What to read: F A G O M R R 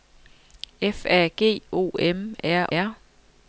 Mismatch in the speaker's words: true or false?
false